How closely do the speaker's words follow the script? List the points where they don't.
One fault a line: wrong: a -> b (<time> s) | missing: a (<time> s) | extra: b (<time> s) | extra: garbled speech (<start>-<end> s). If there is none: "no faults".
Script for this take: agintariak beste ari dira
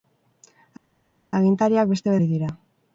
no faults